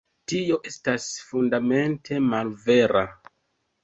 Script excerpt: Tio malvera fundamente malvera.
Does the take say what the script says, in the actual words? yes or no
no